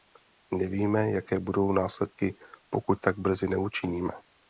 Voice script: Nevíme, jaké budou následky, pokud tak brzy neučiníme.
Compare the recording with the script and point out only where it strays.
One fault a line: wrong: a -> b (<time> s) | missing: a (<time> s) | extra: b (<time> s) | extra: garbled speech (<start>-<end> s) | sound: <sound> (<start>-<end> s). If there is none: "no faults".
no faults